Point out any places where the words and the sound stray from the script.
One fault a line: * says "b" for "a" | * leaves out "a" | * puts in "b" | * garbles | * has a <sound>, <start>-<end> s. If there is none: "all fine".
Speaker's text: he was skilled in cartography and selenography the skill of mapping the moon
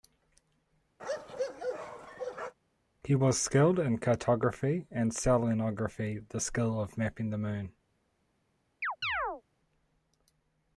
* has a bark, 1.0-2.5 s
* has a chirp, 8.8-9.4 s